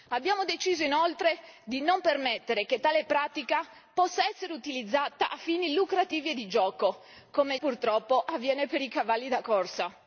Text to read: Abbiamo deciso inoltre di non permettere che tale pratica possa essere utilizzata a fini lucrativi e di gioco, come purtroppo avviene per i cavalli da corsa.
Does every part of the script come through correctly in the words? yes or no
yes